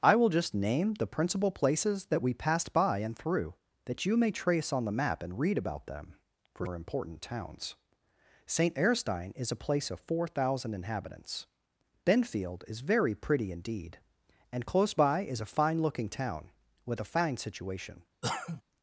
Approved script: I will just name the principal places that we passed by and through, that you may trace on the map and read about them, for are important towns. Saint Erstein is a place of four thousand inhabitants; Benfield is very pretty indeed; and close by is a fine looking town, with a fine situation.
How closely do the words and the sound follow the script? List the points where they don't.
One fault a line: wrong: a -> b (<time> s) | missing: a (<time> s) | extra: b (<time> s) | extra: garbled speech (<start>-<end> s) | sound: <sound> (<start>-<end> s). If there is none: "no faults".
sound: cough (18.2-18.6 s)